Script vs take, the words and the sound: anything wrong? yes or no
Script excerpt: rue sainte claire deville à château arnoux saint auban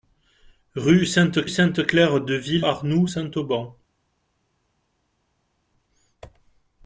yes